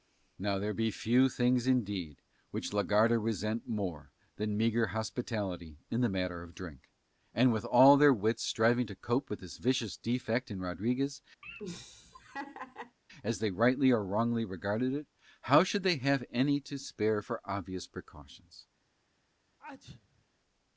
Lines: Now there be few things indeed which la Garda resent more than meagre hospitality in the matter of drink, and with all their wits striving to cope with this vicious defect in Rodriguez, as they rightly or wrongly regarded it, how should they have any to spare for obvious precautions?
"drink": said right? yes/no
yes